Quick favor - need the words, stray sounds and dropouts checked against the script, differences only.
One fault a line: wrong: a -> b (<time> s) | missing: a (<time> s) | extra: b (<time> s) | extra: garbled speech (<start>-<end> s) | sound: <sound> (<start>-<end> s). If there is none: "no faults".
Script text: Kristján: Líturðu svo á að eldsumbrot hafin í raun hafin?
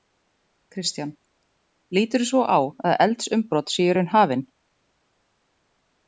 wrong: hafin -> séu (3.8 s)